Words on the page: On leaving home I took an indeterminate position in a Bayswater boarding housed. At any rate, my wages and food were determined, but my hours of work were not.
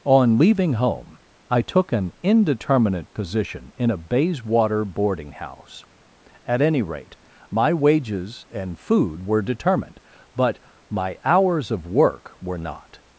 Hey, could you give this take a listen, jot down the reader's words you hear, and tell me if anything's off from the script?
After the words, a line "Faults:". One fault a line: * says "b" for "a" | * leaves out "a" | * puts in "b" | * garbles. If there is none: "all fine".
On leaving home I took an indeterminate position in a Bayswater boarding house. At any rate, my wages and food were determined, but my hours of work were not.
Faults:
* says "house" for "housed"